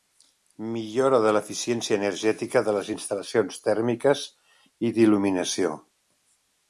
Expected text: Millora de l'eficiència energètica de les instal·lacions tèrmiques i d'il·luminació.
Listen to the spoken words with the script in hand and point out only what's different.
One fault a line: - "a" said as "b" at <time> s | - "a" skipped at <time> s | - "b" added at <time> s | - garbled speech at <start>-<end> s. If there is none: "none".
none